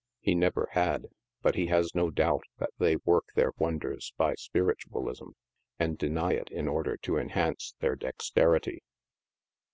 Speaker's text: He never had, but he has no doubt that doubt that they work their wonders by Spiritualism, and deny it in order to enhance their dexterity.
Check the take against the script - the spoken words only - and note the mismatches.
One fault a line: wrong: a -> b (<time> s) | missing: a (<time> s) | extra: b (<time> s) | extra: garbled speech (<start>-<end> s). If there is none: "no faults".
missing: doubt that (2.7 s)